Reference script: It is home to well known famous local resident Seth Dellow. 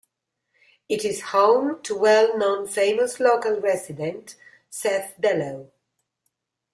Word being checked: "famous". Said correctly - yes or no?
yes